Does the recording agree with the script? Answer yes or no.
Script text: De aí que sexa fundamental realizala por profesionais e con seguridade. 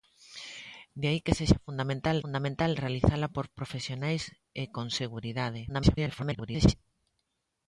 no